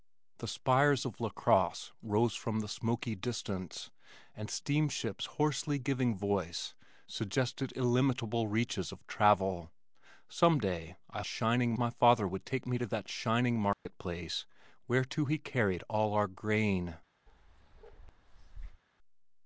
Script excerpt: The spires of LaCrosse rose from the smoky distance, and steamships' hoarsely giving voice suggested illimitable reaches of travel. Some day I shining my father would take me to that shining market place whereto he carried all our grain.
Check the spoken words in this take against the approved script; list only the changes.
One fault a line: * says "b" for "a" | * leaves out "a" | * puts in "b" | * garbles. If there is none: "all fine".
all fine